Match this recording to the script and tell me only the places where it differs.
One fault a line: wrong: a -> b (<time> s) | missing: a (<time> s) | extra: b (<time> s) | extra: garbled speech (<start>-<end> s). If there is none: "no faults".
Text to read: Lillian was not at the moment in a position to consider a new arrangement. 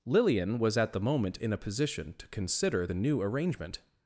missing: not (0.8 s)
wrong: a -> the (2.8 s)